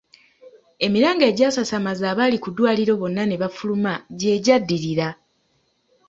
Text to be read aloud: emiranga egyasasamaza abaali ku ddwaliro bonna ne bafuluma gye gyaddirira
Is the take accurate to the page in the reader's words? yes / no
yes